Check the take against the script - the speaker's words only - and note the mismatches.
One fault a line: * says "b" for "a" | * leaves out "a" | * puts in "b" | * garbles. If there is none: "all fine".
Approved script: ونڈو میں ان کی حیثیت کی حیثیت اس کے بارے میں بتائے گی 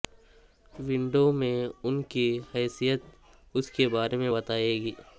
* leaves out "کی حیثیت"